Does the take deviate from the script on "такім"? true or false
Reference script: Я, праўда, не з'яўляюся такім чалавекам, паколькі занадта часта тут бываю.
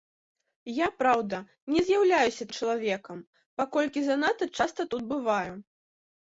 true